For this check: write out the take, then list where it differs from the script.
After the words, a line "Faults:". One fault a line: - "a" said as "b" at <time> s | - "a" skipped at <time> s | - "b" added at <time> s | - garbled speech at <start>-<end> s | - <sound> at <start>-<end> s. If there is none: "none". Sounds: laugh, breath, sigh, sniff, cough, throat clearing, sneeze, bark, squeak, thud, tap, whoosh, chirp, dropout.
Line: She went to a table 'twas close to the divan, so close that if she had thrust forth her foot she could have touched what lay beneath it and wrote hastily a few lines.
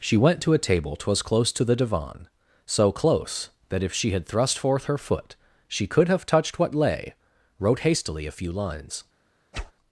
She went to a table 'twas close to the divan, so close that if she had thrust forth her foot she could have touched what lay wrote hastily a few lines.
Faults:
- "beneath it and" skipped at 7.1 s
- whoosh at 9.5-9.7 s